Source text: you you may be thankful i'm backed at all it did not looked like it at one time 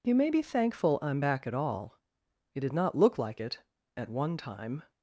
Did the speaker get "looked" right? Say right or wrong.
wrong